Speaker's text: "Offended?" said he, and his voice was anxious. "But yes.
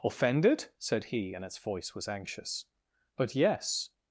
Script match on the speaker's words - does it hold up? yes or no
no